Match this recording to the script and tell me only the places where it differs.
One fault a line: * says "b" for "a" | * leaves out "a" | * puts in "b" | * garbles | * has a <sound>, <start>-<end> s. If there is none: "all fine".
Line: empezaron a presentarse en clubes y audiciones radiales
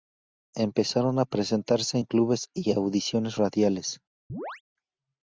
* has a chirp, 4.3-4.6 s